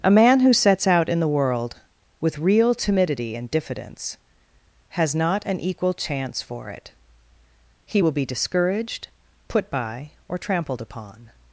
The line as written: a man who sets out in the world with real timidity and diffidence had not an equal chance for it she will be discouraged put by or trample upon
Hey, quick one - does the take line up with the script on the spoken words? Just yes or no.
no